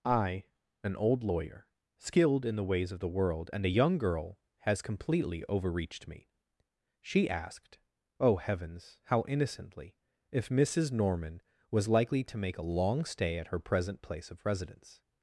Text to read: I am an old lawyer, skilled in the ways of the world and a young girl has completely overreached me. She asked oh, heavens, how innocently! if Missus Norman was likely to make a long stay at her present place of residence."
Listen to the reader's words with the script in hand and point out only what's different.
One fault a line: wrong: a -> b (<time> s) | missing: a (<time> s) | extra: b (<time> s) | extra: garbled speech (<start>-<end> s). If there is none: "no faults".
missing: am (0.5 s)